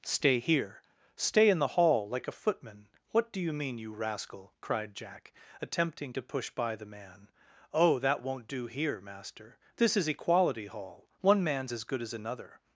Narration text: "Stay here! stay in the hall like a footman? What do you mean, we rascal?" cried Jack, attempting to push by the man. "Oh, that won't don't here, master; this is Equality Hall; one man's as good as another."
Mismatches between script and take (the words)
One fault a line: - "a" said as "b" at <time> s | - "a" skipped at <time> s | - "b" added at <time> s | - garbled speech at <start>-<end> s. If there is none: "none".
- "we" said as "you" at 3.8 s
- "don't" said as "do" at 8.5 s